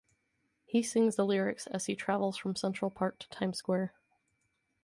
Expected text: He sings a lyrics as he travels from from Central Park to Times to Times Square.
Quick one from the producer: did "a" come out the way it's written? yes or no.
no